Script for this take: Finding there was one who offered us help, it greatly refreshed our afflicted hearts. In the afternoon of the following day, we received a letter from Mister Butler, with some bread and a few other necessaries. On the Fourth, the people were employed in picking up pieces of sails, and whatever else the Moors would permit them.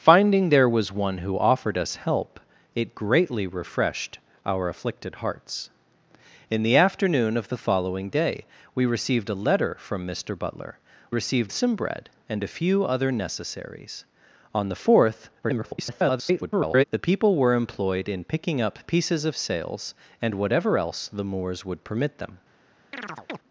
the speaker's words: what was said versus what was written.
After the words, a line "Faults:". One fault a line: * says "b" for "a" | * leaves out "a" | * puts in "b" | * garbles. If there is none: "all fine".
Finding there was one who offered us help, it greatly refreshed our afflicted hearts. In the afternoon of the following day, we received a letter from Mister Butler, received some bread and a few other necessaries. On the Fourth, [garbled] the people were employed in picking up pieces of sails, and whatever else the Moors would permit them.
Faults:
* says "received" for "with"
* garbles